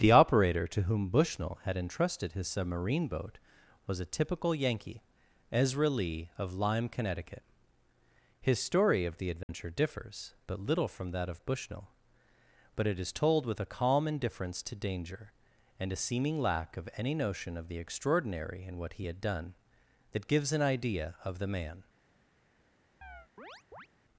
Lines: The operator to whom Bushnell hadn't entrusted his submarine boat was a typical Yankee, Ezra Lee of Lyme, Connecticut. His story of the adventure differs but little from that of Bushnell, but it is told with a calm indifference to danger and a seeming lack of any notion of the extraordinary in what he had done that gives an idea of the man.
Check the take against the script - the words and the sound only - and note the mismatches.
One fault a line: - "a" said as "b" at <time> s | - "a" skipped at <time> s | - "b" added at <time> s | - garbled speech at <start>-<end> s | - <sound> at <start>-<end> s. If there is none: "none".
- "hadn't" said as "had" at 1.6 s
- dropout at 9.4-9.5 s
- chirp at 23.0-23.9 s